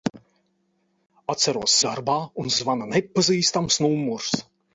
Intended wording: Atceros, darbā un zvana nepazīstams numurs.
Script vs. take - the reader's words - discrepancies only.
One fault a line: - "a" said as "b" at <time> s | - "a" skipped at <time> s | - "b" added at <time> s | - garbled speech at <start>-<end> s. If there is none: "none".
none